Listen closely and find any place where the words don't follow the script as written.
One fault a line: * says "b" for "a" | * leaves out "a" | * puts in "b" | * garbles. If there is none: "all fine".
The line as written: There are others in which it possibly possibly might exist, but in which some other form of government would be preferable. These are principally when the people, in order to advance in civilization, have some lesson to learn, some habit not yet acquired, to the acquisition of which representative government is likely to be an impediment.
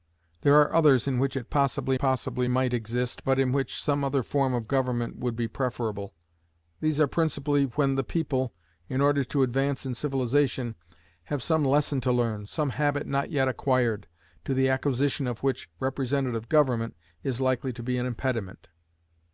all fine